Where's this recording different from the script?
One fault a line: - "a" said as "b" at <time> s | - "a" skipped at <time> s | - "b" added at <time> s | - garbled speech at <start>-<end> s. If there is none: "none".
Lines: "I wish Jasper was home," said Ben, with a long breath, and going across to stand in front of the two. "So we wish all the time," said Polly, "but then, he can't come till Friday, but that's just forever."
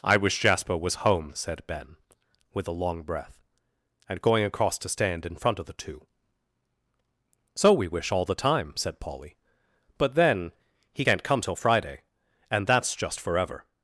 - "but" said as "and" at 12.5 s